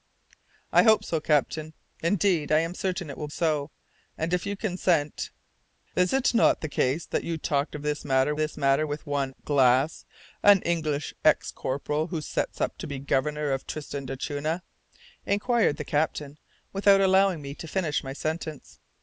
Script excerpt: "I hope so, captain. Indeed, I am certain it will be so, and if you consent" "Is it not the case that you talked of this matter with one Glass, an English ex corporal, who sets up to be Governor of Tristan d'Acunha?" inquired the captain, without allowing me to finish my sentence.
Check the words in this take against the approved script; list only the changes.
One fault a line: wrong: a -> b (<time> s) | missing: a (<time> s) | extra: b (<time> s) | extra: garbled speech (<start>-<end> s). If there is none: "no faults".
missing: be (3.3 s)
extra: this matter (8.4 s)